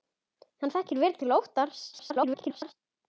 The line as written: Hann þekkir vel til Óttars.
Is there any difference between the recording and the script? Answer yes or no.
yes